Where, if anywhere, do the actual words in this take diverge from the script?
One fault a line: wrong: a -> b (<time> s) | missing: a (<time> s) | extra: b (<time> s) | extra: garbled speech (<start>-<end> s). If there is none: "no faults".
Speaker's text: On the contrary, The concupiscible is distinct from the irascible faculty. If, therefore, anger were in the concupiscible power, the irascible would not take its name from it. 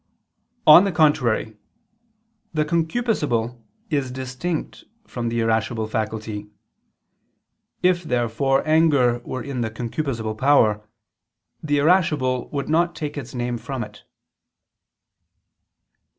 no faults